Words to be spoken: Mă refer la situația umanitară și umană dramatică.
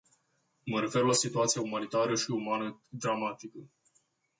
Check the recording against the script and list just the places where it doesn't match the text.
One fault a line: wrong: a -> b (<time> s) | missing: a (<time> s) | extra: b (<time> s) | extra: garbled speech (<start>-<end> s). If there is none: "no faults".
no faults